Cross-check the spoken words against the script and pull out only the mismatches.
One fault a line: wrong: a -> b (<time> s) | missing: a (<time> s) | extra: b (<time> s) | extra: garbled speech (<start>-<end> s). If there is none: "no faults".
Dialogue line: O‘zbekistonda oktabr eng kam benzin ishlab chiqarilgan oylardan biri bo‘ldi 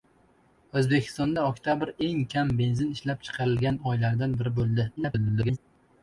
extra: garbled speech (5.0-5.6 s)